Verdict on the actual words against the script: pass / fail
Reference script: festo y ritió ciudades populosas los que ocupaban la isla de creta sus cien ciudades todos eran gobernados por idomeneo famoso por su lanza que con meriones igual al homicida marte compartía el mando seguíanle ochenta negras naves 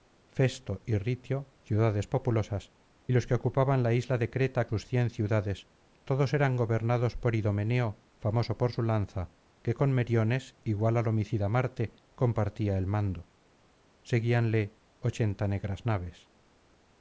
pass